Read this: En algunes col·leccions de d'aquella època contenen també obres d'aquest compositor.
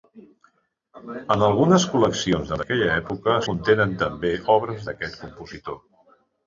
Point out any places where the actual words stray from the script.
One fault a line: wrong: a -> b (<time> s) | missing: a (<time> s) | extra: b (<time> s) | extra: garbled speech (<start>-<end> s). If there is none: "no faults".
no faults